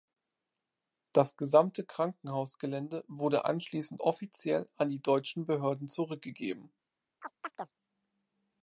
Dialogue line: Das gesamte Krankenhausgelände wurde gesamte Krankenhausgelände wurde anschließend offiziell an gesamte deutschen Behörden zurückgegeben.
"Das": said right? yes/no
yes